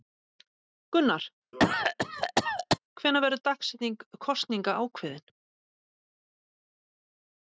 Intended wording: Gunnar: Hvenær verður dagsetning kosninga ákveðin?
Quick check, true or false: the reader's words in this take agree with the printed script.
true